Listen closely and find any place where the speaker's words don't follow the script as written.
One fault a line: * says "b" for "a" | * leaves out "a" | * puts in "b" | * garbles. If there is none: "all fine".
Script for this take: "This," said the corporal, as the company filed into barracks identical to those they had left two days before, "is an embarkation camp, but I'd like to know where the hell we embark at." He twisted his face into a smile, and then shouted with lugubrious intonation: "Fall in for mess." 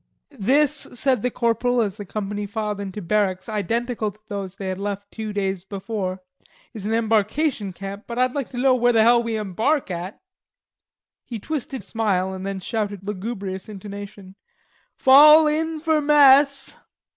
* leaves out "his face into"
* leaves out "with"